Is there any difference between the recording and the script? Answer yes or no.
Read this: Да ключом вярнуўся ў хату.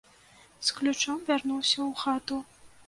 yes